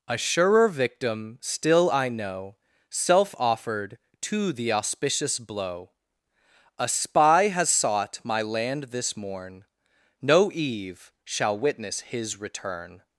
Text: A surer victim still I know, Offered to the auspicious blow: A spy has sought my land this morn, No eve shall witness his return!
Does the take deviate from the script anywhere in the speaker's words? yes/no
yes